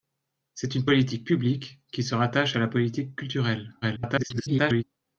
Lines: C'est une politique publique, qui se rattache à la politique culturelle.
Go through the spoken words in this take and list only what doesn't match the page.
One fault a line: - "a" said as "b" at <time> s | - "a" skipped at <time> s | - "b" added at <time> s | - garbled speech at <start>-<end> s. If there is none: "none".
- garbled speech at 3.8-4.8 s